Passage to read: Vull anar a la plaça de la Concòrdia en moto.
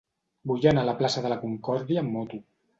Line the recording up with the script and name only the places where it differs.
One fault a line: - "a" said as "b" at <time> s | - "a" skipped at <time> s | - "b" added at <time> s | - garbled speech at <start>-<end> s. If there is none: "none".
- "en" said as "amb" at 2.0 s